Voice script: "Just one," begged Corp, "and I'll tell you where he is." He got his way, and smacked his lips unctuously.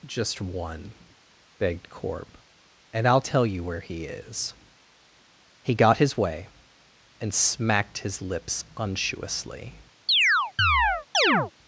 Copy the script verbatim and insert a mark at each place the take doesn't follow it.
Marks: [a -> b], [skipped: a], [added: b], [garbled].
"Just one," begged Corp, "and I'll tell you where he is." He got his way, and smacked his lips unctuously.